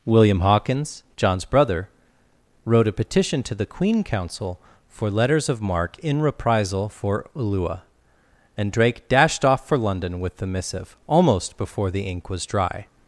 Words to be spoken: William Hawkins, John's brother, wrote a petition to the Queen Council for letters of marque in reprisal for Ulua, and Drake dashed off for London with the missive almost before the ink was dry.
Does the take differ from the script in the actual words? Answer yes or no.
no